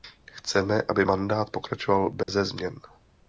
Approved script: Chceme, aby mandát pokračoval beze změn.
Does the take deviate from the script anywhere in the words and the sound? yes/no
yes